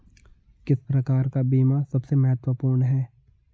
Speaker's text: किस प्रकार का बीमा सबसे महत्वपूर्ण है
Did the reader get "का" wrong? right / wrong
right